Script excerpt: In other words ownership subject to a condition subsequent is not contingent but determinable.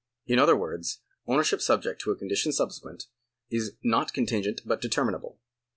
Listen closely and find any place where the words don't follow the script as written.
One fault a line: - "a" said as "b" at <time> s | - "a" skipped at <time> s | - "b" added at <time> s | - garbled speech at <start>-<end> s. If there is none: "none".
none